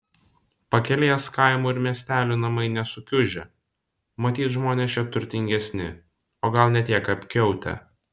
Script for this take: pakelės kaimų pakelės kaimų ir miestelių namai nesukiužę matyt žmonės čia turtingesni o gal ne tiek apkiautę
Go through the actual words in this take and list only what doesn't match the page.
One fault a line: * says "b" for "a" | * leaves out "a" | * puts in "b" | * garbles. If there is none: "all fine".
* leaves out "pakelės kaimų"